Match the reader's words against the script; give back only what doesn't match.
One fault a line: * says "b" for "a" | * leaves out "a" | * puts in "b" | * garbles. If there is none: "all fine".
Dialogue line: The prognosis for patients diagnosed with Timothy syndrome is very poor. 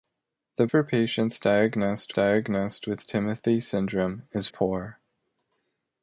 * leaves out "prognosis"
* puts in "diagnosed"
* leaves out "very"